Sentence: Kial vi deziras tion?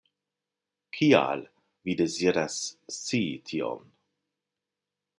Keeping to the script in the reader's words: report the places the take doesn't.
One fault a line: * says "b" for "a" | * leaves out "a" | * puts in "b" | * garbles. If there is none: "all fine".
* puts in "scii"